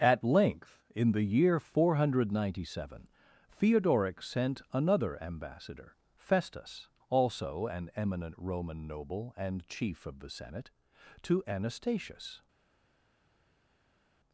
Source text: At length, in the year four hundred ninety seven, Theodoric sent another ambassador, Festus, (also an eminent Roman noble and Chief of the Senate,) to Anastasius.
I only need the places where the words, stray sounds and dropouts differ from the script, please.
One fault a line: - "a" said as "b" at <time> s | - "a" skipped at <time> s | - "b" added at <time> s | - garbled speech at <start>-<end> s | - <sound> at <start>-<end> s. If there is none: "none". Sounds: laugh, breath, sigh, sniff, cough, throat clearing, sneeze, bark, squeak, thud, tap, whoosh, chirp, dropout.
none